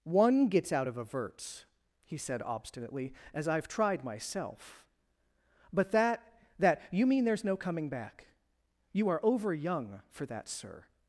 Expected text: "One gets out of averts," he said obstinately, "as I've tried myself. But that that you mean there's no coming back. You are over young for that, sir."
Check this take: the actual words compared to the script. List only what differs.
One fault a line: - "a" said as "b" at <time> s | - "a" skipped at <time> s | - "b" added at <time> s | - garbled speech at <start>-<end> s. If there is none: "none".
none